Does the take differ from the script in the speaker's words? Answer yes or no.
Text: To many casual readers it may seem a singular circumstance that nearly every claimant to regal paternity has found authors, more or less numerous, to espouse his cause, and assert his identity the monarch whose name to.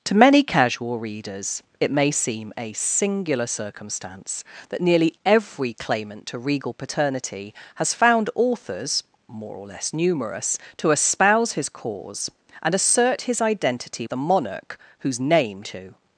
no